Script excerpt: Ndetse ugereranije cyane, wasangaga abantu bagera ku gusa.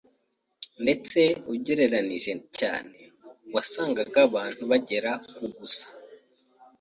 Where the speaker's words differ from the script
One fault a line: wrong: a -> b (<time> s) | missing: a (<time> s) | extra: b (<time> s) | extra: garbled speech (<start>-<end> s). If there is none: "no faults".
no faults